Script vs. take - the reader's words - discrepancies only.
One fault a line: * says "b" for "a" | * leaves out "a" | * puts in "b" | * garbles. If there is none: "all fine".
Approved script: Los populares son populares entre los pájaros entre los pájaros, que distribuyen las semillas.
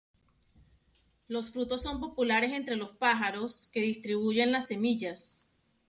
* says "frutos" for "populares"
* leaves out "entre los pájaros"